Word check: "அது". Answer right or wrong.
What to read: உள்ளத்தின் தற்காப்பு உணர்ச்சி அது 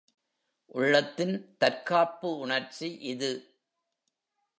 wrong